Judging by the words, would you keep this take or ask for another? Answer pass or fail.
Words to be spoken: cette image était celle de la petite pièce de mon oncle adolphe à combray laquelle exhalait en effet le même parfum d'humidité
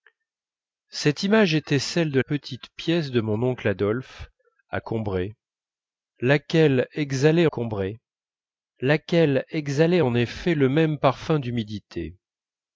fail